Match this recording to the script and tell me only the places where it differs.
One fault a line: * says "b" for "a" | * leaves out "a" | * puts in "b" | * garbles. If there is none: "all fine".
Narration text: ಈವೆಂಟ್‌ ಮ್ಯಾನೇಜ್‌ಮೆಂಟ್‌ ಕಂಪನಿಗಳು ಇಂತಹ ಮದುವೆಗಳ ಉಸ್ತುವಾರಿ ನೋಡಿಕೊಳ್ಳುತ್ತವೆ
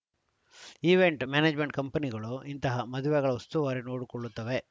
all fine